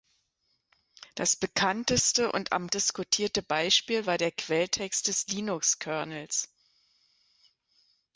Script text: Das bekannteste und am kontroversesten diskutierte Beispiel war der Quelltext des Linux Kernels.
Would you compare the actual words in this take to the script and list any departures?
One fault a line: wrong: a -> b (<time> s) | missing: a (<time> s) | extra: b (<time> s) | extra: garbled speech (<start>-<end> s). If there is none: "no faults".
missing: kontroversesten (2.7 s)